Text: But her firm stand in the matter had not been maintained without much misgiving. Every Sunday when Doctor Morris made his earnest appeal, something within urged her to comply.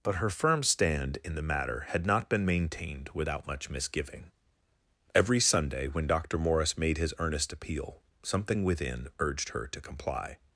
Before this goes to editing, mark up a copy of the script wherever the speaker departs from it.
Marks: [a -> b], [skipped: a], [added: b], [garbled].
But her firm stand in the matter had not been maintained without much misgiving. Every Sunday when Doctor Morris made his earnest appeal, something within urged her to comply.